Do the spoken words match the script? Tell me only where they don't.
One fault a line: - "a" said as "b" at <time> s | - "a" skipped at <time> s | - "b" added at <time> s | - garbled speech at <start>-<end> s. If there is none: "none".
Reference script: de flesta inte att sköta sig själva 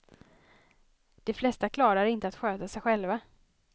- "klarar" added at 1.7 s